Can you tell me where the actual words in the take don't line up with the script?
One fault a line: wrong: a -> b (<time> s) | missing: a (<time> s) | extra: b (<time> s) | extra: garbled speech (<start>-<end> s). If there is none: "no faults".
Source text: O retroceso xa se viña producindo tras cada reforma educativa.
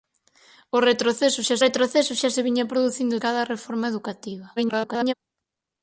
extra: retroceso xa (1.6 s)
missing: tras (3.2 s)
extra: garbled speech (4.6-5.1 s)